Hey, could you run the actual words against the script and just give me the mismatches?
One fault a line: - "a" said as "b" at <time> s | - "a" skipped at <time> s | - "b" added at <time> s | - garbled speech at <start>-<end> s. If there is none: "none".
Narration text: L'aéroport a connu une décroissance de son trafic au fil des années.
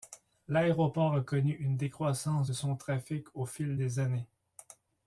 none